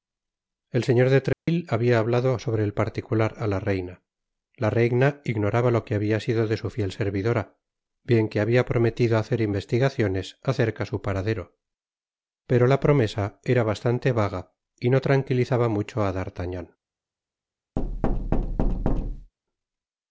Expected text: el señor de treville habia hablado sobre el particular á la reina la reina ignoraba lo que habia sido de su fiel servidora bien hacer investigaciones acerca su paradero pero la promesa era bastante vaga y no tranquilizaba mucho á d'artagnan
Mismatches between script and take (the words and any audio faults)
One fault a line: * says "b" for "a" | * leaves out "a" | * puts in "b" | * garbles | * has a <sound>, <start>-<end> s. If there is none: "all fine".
* has a dropout, 1.3-1.5 s
* puts in "que habia prometido"
* has a thud, 17.8-19.3 s